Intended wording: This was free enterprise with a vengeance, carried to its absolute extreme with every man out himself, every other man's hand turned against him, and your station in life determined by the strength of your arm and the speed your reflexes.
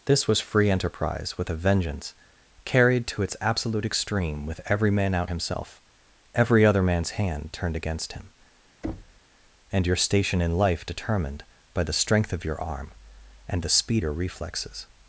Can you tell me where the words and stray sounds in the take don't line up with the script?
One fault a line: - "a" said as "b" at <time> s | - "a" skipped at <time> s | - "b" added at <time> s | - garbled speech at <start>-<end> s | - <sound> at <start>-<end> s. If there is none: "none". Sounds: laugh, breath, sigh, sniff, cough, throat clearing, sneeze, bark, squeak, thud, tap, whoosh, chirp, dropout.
- thud at 8.8-9.2 s